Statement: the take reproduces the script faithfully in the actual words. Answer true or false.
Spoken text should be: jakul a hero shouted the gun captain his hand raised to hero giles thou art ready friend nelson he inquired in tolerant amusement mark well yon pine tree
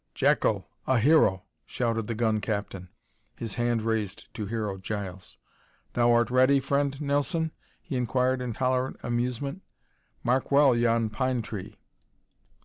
true